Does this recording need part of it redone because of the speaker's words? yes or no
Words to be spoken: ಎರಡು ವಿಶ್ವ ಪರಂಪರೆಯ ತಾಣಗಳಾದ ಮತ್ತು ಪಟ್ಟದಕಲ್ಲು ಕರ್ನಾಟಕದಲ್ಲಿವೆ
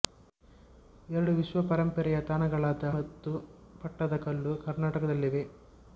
no